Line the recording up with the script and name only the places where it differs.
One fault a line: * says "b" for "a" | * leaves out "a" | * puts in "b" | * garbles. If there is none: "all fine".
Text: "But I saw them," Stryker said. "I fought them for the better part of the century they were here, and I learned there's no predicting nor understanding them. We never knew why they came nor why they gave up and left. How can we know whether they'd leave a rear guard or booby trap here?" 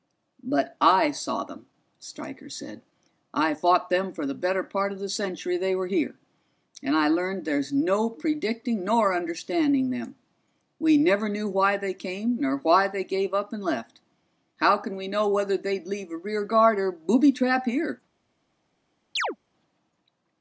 all fine